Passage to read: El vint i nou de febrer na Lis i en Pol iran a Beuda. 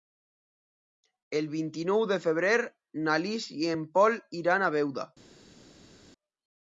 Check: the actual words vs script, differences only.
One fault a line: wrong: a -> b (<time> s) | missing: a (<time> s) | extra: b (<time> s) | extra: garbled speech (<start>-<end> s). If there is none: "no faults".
no faults